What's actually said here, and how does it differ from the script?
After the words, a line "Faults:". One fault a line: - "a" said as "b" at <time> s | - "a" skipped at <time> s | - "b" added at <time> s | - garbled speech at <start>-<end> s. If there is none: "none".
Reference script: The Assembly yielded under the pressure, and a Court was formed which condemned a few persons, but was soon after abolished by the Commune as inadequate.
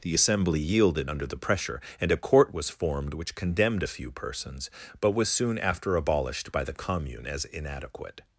The Assembly yielded under the pressure, and a Court was formed which condemned a few persons, but was soon after abolished by the Commune as inadequate.
Faults:
none